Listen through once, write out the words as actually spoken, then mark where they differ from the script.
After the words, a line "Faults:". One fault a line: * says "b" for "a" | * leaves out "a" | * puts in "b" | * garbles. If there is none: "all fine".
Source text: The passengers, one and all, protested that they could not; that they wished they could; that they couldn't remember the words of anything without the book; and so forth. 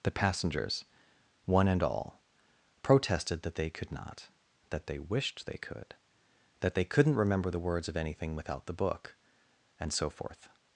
The passengers, one and all, protested that they could not; that they wished they could; that they couldn't remember the words of anything without the book; and so forth.
Faults:
all fine